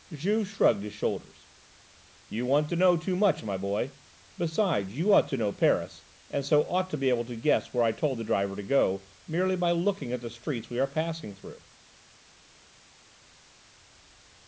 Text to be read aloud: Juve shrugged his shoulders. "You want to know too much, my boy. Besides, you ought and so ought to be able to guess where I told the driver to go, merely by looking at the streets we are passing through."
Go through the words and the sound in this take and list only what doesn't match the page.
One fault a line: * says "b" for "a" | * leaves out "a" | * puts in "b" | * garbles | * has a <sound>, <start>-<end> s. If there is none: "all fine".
* puts in "to know Paris"